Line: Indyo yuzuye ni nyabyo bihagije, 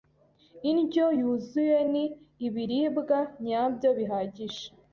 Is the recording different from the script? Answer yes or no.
yes